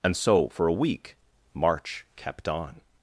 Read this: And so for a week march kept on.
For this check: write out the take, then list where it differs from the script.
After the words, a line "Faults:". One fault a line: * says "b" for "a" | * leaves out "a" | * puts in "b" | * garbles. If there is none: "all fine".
And so for a week march kept on.
Faults:
all fine